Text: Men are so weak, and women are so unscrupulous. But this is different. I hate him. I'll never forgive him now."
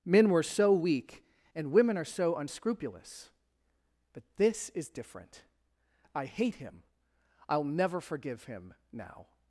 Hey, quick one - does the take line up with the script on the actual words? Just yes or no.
no